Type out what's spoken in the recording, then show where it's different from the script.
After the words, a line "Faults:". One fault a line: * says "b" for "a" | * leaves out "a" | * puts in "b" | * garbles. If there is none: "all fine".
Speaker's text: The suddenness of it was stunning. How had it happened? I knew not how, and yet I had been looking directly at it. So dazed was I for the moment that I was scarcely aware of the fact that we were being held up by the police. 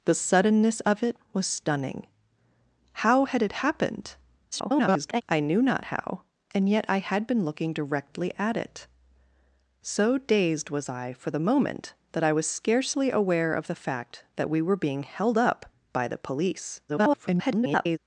The suddenness of it was stunning. How had it happened? [garbled] I knew not how, and yet I had been looking directly at it. So dazed was I for the moment that I was scarcely aware of the fact that we were being held up by the police. [garbled]
Faults:
* garbles
* garbles